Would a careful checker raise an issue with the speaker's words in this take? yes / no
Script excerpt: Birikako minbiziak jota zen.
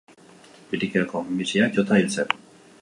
yes